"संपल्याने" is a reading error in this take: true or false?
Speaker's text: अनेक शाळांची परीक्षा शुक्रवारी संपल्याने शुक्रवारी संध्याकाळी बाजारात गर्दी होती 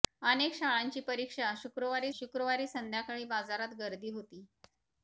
true